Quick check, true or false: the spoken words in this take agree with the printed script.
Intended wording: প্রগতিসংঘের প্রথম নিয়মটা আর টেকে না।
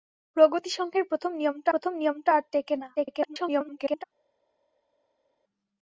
false